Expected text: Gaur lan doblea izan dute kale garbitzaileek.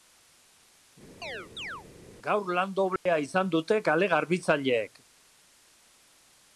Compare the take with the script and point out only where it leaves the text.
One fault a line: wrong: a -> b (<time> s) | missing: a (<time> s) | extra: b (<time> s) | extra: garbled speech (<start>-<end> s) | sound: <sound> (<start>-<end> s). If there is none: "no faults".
sound: chirp (1.2-1.9 s)
sound: dropout (3.0-3.1 s)